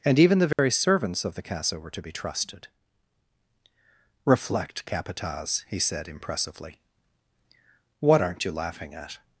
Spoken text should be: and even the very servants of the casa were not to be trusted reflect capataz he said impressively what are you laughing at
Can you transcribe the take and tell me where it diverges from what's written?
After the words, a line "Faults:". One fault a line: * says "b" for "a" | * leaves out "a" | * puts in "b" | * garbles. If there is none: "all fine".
and even the very servants of the casa were to be trusted reflect capataz he said impressively what aren't you laughing at
Faults:
* leaves out "not"
* says "aren't" for "are"